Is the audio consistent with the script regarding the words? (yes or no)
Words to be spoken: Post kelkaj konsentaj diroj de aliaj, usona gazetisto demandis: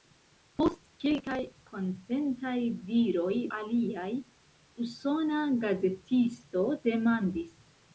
no